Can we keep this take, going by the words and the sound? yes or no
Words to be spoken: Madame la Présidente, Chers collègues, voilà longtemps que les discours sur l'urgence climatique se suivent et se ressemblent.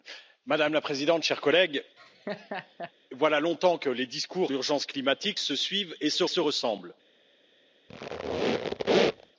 no